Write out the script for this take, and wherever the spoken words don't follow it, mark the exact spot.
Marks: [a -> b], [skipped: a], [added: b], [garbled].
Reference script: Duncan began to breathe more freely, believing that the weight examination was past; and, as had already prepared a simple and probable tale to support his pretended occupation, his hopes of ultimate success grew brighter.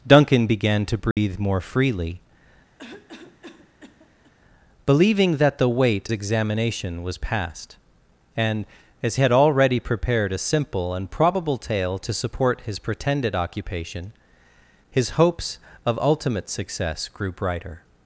Duncan began to breathe more freely, believing that the weight examination was past; and, as had already prepared a simple and probable tale to support his pretended occupation, his hopes of ultimate success grew brighter.